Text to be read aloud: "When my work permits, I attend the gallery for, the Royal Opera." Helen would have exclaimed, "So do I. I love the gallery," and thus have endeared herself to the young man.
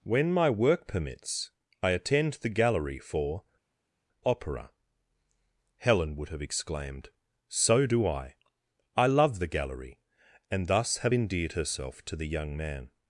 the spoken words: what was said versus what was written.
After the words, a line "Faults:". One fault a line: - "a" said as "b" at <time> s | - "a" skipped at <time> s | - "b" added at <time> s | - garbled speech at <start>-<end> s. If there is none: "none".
"When my work permits, I attend the gallery for, Opera." Helen would have exclaimed, "So do I. I love the gallery," and thus have endeared herself to the young man.
Faults:
- "the Royal" skipped at 3.4 s